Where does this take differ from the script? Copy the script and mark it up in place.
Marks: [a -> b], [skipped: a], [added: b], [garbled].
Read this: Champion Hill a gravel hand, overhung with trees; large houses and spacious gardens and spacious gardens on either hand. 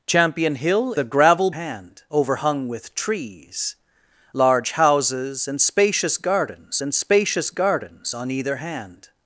Champion Hill a gravel hand, overhung with trees; large houses and spacious gardens and spacious gardens on either hand.